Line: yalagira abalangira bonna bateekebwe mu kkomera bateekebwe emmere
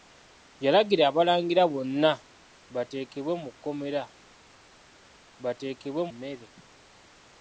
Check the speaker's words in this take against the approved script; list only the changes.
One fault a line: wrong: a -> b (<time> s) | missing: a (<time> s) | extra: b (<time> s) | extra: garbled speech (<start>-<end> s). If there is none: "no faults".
no faults